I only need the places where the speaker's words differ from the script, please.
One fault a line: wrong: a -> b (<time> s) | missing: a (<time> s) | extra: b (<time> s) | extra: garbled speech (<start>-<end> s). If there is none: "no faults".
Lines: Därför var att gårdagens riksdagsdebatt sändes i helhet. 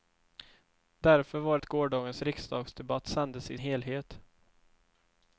no faults